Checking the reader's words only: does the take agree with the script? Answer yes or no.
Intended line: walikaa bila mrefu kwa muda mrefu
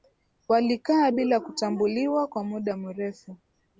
no